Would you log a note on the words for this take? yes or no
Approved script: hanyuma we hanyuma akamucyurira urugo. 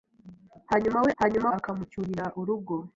no